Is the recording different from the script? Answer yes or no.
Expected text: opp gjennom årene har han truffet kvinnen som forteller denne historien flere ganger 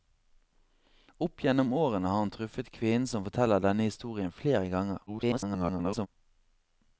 yes